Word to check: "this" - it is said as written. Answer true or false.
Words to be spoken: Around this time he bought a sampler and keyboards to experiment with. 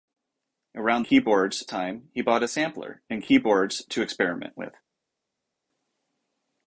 false